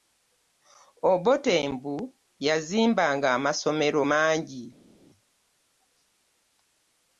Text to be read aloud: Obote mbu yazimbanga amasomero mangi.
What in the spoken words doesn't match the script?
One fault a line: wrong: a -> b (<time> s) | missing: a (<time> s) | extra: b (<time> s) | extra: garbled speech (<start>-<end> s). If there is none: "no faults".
no faults